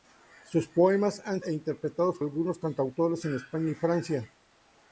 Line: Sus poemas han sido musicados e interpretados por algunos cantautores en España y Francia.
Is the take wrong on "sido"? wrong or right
wrong